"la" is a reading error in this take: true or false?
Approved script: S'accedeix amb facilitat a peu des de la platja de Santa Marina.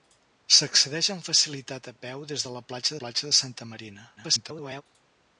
false